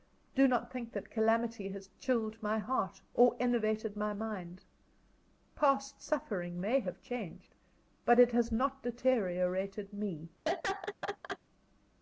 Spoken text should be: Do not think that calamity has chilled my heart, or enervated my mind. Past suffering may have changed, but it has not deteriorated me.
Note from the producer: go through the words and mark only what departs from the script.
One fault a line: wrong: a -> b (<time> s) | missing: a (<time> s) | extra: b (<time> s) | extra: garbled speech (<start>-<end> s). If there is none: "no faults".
no faults